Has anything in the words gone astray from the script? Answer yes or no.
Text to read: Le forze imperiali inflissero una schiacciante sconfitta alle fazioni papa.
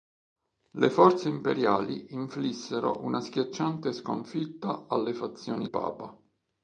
no